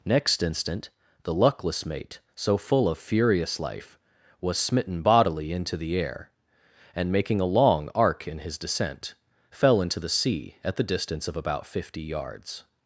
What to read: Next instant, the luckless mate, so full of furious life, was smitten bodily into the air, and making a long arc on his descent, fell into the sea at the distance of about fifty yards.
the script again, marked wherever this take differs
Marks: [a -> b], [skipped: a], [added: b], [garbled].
Next instant, the luckless mate, so full of furious life, was smitten bodily into the air, and making a long arc [on -> in] his descent, fell into the sea at the distance of about fifty yards.